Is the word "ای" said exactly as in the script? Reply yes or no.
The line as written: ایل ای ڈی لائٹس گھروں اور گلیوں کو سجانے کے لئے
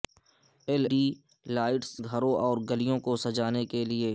no